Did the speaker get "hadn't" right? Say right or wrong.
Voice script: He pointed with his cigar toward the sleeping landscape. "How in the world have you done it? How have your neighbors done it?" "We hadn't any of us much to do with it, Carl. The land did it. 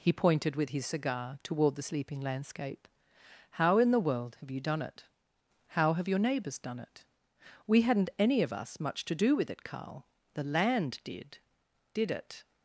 right